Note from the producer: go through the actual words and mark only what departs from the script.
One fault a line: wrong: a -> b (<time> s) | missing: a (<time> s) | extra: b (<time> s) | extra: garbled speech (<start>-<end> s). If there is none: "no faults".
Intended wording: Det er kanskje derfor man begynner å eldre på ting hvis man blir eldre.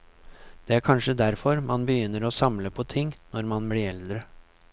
wrong: eldre -> samle (2.4 s)
wrong: hvis -> når (3.4 s)